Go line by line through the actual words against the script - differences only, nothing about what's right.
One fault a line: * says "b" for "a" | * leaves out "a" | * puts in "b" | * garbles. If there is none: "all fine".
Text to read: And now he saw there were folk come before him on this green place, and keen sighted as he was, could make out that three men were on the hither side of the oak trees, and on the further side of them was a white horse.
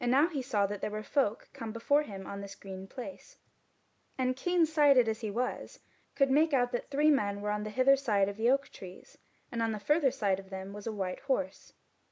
* puts in "that"